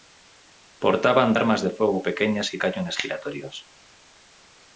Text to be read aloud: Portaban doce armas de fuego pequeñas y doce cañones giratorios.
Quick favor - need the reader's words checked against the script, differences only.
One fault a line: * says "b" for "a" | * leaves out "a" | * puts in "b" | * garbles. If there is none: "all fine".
* leaves out "doce"
* leaves out "doce"